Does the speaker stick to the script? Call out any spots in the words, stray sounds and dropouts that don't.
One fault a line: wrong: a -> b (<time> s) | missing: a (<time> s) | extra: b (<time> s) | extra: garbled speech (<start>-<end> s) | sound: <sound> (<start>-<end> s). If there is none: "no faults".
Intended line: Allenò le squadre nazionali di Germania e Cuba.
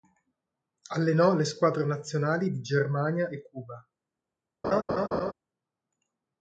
sound: laugh (4.6-5.3 s)